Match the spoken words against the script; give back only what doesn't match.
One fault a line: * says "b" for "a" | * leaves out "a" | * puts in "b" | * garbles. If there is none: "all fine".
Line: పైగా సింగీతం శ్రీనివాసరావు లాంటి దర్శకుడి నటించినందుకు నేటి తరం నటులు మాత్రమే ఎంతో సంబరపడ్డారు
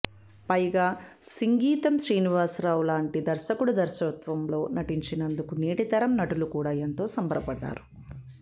* puts in "దర్శకత్వంలో"
* says "కూడా" for "మాత్రమే"